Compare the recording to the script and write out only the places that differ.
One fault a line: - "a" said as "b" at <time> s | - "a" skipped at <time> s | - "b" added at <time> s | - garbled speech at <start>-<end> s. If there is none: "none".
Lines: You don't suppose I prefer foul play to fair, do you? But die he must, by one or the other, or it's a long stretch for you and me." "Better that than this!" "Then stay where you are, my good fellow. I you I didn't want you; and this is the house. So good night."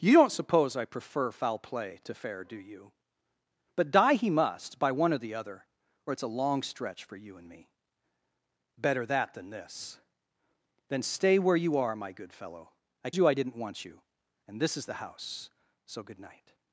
none